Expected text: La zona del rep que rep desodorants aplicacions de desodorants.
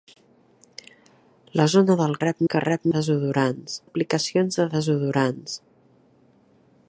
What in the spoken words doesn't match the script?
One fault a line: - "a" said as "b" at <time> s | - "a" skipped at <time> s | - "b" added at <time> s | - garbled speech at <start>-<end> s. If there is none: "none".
none